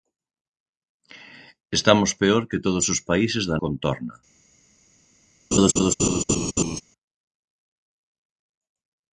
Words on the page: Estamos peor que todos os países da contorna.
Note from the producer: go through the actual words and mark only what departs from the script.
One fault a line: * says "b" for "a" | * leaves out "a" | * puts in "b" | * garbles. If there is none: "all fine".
all fine